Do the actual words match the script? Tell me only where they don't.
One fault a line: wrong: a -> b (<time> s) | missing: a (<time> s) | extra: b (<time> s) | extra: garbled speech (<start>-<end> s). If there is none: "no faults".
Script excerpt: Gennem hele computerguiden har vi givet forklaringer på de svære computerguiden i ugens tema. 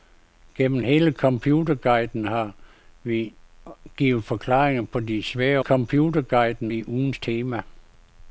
no faults